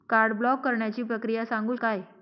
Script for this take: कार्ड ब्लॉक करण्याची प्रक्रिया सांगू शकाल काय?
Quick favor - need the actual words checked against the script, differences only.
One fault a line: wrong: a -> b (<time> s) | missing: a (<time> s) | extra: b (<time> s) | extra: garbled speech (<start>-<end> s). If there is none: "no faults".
missing: शकाल (1.8 s)